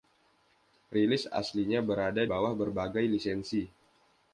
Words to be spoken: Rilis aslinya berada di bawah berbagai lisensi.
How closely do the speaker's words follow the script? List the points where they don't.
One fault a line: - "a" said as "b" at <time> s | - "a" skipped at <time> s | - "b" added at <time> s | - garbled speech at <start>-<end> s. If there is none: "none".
- "di" skipped at 2.2 s